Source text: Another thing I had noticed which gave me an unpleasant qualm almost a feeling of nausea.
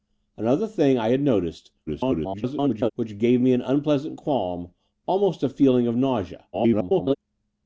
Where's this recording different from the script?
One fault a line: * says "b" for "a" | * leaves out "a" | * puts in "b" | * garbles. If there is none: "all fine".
* garbles
* garbles